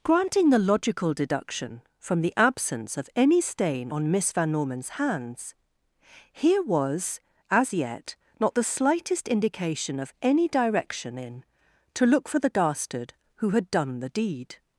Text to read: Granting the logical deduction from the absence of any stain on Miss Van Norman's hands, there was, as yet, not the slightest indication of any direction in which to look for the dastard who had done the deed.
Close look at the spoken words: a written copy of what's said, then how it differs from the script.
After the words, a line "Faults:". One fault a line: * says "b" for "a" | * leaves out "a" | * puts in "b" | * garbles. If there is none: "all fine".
Granting the logical deduction from the absence of any stain on Miss Van Norman's hands, here was, as yet, not the slightest indication of any direction in to look for the dastard who had done the deed.
Faults:
* says "here" for "there"
* leaves out "which"